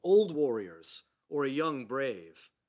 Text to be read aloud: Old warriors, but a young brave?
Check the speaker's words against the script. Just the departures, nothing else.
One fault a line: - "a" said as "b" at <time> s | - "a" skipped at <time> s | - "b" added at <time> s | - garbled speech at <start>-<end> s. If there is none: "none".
- "but" said as "or" at 1.3 s